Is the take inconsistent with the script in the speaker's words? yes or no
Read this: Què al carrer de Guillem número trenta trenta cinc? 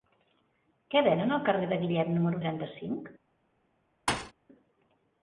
yes